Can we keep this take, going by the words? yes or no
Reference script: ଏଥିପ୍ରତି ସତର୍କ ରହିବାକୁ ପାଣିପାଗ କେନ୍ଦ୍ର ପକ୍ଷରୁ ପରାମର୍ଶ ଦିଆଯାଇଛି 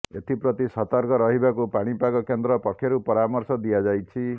yes